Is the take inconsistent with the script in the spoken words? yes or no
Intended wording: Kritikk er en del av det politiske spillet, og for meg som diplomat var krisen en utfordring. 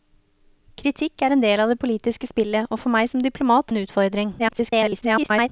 yes